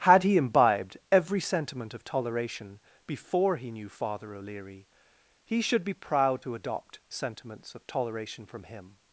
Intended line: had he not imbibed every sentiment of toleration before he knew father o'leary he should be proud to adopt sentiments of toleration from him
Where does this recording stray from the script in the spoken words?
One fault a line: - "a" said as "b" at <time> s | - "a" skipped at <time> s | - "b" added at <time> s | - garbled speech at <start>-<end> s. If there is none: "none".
- "not" skipped at 0.3 s